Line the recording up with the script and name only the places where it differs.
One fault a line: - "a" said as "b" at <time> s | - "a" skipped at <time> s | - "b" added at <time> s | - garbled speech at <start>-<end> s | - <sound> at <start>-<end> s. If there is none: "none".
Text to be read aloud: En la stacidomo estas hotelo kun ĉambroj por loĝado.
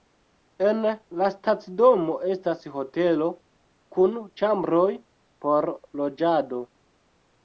none